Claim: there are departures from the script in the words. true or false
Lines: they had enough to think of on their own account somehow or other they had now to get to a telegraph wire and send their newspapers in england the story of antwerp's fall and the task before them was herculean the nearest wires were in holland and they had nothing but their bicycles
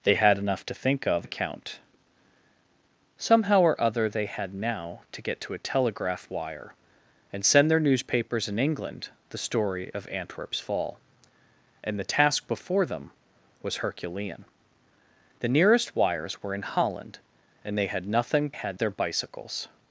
true